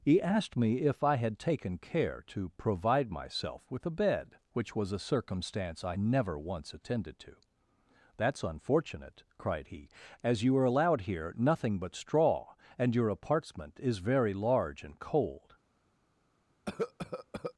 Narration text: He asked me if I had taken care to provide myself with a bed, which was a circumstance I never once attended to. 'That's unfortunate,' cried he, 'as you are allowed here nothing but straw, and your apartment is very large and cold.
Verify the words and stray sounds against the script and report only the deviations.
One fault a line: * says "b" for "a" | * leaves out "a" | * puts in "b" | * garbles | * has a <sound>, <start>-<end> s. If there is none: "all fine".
* has a cough, 16.7-17.5 s